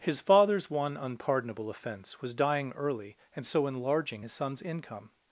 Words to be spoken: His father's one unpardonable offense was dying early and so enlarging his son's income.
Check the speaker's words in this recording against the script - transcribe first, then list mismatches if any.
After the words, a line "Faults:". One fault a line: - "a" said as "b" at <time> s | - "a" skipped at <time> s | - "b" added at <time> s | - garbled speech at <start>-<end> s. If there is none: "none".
His father's one unpardonable offense was dying early and so enlarging his son's income.
Faults:
none